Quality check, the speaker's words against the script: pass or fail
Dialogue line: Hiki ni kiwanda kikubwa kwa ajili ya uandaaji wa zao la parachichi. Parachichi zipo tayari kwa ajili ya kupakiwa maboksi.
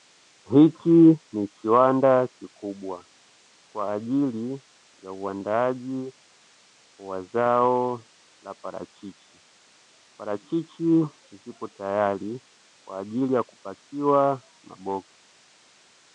pass